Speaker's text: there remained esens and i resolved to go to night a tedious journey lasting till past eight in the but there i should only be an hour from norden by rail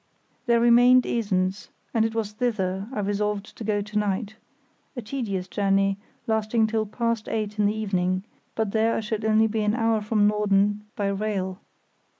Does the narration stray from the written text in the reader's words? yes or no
yes